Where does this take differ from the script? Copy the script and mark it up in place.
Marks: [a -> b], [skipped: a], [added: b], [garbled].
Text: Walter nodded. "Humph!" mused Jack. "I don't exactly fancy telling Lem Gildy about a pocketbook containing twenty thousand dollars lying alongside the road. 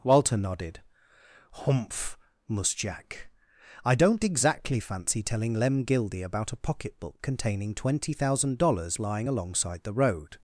Walter nodded. "Humph!" [mused -> mus] Jack. "I don't exactly fancy telling Lem Gildy about a pocketbook containing twenty thousand dollars lying alongside the road.